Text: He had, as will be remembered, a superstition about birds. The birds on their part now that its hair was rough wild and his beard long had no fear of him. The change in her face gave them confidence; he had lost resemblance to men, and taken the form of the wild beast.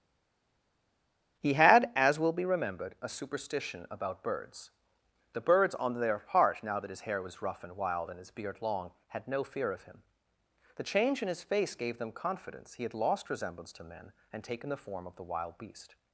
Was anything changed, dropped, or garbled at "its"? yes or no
yes